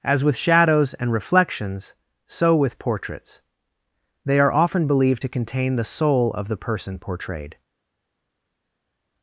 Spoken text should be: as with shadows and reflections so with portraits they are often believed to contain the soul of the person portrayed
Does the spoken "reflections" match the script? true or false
true